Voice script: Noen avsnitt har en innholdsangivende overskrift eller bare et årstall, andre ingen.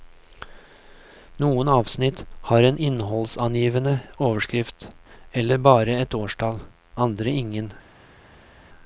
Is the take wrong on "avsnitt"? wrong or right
right